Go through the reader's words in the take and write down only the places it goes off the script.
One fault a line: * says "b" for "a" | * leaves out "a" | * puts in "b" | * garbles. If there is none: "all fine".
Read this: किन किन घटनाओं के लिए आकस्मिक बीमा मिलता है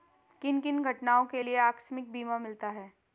all fine